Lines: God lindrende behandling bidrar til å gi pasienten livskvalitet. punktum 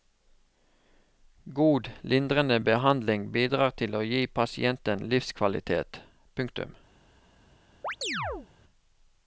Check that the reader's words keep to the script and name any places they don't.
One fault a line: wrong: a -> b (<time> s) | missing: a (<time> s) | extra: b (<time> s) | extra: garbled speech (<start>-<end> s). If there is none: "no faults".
no faults